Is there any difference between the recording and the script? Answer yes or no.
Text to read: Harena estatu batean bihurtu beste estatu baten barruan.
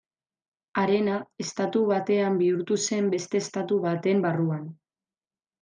yes